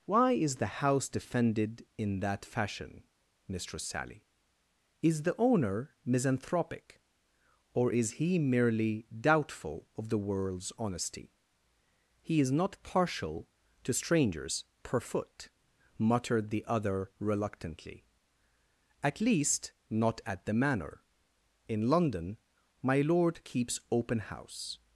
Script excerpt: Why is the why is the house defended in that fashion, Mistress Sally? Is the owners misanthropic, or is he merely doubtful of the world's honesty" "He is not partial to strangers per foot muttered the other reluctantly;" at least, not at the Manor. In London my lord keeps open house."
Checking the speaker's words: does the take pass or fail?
fail